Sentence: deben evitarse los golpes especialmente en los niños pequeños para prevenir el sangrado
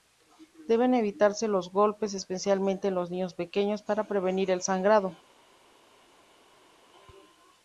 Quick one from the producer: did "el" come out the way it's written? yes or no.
yes